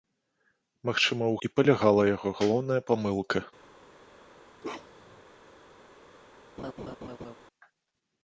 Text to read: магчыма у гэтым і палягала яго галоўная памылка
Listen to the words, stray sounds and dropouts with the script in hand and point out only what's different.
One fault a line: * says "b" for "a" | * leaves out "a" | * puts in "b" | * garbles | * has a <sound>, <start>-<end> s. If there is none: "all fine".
* leaves out "гэтым"
* has a bark, 4.6-5.2 s
* has a laugh, 6.6-7.3 s